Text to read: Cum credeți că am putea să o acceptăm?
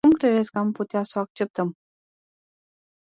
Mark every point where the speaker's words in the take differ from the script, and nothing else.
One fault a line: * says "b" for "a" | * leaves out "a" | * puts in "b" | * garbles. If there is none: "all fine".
all fine